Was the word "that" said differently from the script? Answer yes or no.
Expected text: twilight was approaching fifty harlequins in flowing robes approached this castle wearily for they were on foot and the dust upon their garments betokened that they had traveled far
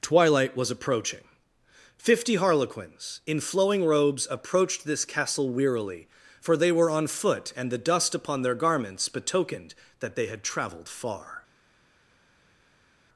no